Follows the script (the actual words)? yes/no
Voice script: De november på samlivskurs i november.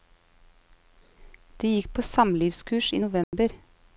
no